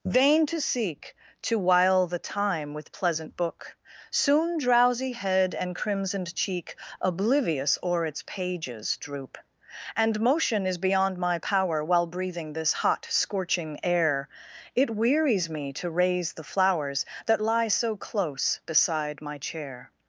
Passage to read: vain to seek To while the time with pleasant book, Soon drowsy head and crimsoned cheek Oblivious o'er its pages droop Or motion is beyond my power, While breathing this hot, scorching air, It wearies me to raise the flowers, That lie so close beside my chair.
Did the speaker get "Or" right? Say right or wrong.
wrong